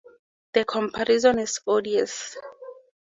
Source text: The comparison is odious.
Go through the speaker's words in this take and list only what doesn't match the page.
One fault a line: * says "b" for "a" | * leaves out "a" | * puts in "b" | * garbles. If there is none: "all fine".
all fine